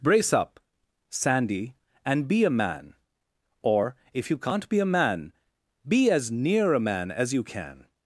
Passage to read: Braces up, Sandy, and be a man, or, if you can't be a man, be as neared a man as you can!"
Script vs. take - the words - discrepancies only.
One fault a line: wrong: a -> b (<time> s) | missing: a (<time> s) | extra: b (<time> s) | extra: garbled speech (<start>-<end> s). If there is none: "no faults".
wrong: Braces -> Brace (0.0 s)
wrong: neared -> near (6.3 s)